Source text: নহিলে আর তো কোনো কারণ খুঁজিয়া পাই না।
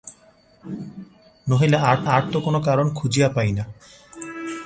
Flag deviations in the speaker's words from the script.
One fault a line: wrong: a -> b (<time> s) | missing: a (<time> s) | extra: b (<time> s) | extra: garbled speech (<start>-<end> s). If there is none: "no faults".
extra: আর (2.0 s)